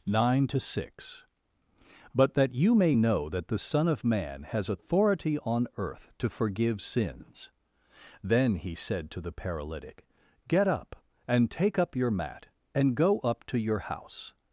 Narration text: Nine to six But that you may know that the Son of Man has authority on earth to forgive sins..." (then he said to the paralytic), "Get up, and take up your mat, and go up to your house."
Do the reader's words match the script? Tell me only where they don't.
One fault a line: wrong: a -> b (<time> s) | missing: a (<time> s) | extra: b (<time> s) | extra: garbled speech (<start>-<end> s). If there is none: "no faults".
no faults